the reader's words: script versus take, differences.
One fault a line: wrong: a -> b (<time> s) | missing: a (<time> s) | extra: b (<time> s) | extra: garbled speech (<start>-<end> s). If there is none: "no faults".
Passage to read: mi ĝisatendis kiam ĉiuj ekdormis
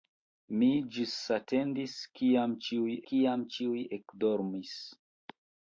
extra: kiam ĉiuj (3.1 s)